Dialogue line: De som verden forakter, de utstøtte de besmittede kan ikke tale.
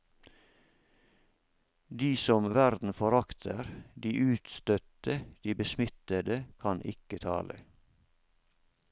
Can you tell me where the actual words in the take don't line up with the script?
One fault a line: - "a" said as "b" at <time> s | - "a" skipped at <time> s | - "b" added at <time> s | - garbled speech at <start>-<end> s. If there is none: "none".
none